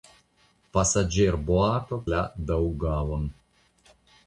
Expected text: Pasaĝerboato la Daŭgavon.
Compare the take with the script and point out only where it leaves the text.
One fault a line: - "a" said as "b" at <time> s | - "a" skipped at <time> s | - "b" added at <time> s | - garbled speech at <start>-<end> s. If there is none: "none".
none